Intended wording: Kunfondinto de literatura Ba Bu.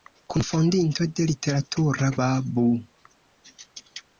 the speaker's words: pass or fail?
pass